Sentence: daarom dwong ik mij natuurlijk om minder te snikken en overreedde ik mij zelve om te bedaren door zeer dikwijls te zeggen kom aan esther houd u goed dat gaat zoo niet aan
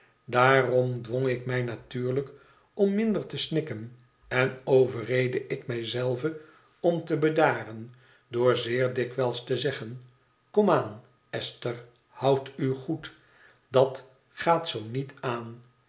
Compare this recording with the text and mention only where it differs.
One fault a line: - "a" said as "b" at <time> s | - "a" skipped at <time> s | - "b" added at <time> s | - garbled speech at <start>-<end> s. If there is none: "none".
none